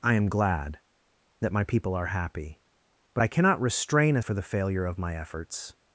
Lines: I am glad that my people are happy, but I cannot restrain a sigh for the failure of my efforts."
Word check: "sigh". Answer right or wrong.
wrong